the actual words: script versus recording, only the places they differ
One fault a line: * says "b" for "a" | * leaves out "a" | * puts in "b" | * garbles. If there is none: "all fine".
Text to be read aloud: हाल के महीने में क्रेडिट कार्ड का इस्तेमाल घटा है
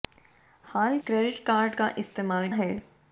* leaves out "के महीने में"
* leaves out "घटा"